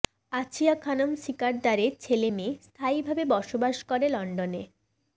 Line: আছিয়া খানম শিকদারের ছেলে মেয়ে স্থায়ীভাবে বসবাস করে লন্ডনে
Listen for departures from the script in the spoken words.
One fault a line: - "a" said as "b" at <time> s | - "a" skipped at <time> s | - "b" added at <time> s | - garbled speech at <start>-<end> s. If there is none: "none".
none